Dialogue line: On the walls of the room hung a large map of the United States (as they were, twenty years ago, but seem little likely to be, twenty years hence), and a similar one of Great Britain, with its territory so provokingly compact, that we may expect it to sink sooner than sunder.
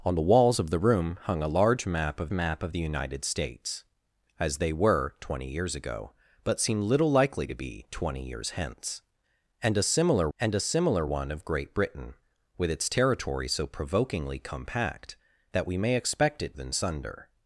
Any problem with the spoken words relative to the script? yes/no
yes